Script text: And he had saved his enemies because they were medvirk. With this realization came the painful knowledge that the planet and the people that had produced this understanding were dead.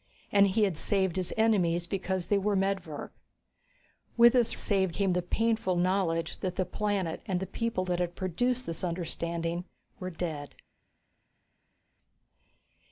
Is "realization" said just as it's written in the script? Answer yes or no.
no